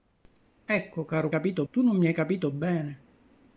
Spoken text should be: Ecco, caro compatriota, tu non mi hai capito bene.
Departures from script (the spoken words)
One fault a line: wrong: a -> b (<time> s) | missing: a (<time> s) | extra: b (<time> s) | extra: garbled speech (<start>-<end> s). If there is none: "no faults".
wrong: compatriota -> capito (1.3 s)